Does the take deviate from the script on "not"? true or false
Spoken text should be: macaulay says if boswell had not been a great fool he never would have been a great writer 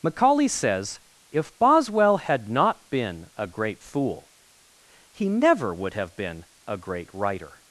false